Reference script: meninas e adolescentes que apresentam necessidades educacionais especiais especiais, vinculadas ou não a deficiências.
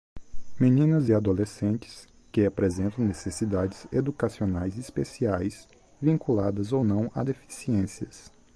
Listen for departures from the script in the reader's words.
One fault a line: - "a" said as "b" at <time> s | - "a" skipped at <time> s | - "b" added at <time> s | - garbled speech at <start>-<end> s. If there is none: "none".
- "especiais" skipped at 5.7 s